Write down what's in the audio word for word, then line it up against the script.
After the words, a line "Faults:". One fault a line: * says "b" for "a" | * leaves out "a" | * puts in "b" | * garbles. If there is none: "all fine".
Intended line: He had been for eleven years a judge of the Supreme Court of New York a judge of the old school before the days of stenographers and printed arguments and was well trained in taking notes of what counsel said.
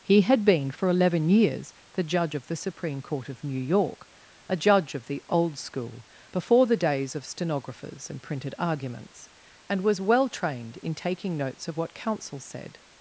He had been for eleven years the judge of the Supreme Court of New York a judge of the old school before the days of stenographers and printed arguments and was well trained in taking notes of what counsel said.
Faults:
* says "the" for "a"